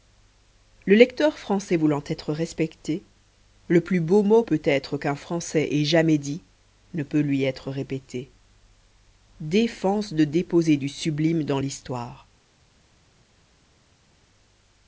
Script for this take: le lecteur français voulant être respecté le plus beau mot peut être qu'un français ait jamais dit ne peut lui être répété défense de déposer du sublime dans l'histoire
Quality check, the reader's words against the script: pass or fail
pass